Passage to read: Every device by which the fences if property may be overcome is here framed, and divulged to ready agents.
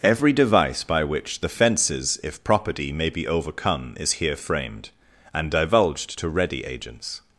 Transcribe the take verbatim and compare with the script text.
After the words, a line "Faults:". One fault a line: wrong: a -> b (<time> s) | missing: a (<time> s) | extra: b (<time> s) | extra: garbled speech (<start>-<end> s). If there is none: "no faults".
Every device by which the fences if property may be overcome is here framed, and divulged to ready agents.
Faults:
no faults